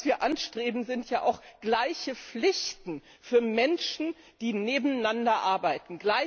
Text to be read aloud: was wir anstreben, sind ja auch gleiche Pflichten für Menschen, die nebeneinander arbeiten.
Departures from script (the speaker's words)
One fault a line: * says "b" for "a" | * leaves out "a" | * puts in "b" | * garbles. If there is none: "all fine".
all fine